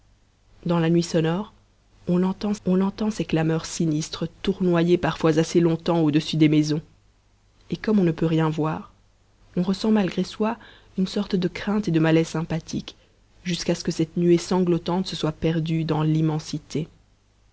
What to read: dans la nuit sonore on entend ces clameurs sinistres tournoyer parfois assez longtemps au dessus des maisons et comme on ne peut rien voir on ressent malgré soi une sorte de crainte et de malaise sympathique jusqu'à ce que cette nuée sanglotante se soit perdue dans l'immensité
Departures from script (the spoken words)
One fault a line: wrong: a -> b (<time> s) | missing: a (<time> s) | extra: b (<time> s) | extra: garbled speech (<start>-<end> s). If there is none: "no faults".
extra: on entend (2.7 s)